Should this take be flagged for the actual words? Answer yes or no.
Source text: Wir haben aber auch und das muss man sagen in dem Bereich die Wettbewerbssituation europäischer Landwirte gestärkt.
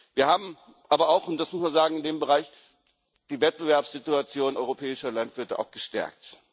no